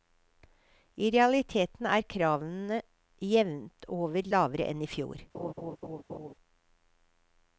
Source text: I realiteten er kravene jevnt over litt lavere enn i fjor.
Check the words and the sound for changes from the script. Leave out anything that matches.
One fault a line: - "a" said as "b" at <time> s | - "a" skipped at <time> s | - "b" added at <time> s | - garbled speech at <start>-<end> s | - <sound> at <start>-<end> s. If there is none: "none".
- "litt" skipped at 4.3 s
- laugh at 5.3-6.3 s